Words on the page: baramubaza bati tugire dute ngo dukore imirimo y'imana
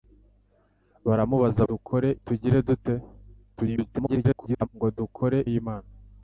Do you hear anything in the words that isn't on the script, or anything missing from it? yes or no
yes